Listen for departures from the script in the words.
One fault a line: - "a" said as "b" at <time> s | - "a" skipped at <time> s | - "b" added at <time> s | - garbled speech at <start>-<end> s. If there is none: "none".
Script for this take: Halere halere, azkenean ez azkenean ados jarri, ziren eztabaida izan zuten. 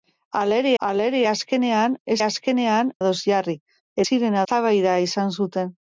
none